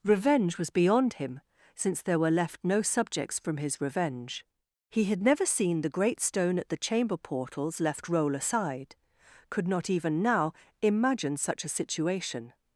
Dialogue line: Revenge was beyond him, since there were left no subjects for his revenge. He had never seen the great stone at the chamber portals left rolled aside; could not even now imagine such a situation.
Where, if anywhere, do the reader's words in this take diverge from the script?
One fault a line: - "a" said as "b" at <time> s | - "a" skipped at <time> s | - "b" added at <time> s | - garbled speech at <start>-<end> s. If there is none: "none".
- "for" said as "from" at 3.4 s
- "rolled" said as "roll" at 8.1 s